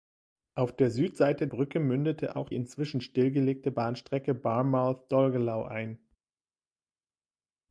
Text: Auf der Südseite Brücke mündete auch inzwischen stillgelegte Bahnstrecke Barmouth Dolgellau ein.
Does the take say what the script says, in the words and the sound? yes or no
yes